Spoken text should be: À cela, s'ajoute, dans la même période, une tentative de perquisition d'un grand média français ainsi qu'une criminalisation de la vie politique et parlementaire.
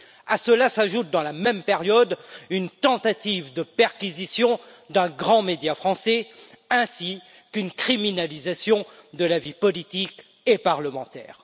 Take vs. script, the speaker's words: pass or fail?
pass